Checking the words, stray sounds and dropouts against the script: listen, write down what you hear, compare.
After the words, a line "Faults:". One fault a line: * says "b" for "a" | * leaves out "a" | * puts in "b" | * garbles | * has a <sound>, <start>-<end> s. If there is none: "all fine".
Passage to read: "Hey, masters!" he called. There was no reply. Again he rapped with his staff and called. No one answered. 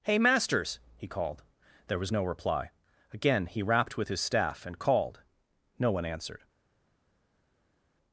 "Hey, masters!" he called. There was no reply. Again he rapped with his staff and called. No one answered.
Faults:
all fine